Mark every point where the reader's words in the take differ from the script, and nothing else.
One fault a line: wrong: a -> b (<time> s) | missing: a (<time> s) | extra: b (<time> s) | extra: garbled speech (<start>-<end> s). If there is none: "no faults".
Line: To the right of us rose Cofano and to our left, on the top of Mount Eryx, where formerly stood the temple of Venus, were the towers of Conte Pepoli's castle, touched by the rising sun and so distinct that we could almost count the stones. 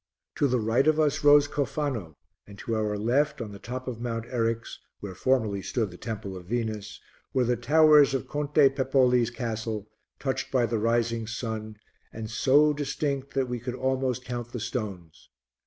no faults